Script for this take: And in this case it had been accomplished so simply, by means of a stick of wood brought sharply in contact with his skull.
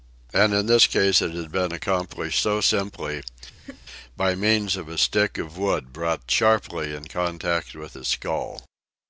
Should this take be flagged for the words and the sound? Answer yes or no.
yes